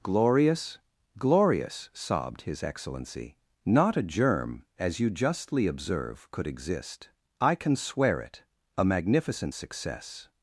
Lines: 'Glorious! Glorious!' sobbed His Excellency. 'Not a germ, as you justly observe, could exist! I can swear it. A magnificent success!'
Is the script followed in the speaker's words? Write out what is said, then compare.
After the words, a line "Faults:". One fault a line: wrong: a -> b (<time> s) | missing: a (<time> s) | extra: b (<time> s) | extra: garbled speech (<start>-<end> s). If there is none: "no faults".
'Glorious! Glorious!' sobbed His Excellency. 'Not a germ, as you justly observe, could exist! I can swear it. A magnificent success!'
Faults:
no faults